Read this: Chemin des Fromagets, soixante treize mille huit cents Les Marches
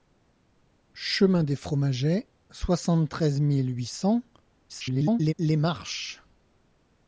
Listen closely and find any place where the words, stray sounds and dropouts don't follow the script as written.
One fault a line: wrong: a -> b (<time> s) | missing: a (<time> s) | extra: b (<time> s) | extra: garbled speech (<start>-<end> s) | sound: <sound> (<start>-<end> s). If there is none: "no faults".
extra: garbled speech (4.7-5.3 s)